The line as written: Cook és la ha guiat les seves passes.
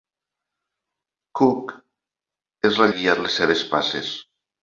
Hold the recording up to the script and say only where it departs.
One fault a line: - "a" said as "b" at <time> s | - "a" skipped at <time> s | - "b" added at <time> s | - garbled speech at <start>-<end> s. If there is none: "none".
none